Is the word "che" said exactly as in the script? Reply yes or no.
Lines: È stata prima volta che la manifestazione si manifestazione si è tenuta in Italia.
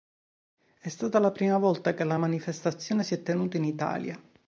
yes